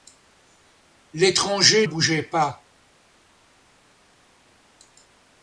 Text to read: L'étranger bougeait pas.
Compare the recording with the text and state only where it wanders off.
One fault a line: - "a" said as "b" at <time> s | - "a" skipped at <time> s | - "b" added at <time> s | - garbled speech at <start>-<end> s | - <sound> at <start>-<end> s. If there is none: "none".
none